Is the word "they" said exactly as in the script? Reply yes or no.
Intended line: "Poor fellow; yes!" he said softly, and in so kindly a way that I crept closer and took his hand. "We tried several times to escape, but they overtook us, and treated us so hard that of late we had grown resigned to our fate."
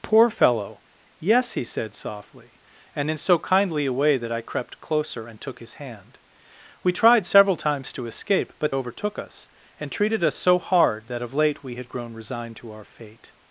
no